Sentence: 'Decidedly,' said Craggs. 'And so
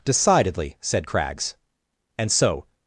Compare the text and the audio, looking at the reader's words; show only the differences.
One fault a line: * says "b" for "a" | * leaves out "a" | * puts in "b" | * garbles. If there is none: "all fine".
all fine